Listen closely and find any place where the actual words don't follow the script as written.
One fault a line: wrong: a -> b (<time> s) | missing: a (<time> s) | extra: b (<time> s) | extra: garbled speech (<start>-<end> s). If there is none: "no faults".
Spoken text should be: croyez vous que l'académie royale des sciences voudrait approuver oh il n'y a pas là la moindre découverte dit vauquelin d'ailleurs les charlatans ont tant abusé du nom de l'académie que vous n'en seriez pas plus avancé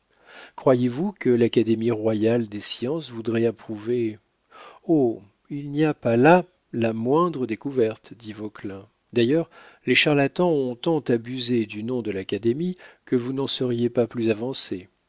no faults